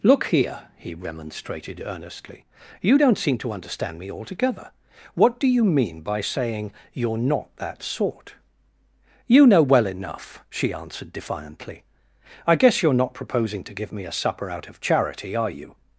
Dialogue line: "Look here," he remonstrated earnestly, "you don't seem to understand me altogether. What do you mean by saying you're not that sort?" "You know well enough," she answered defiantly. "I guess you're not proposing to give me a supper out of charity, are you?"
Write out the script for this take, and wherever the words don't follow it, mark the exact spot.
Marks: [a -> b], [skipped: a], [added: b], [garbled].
"Look here," he remonstrated earnestly, "you don't seem to understand me altogether. What do you mean by saying you're not that sort?" "You know well enough," she answered defiantly. "I guess you're not proposing to give me a supper out of charity, are you?"